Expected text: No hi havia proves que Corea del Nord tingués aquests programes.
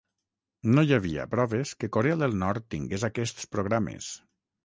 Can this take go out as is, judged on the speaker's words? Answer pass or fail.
pass